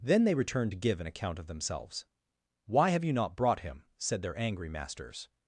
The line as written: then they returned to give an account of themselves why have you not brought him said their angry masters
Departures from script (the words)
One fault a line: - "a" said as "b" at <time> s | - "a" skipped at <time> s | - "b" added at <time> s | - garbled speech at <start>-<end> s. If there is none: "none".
none